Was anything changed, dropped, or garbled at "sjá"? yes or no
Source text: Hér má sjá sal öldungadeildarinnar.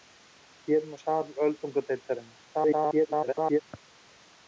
yes